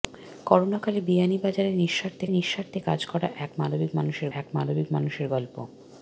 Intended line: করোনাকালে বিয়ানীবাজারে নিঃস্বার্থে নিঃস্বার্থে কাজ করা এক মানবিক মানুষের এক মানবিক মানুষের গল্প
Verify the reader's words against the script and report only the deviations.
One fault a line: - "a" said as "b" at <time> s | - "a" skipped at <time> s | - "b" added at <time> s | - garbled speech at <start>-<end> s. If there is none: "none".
none